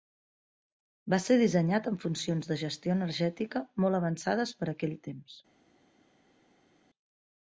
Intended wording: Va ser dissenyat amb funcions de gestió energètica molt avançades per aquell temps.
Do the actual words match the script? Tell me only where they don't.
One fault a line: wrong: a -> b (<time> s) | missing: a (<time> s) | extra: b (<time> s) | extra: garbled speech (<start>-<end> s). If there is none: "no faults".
no faults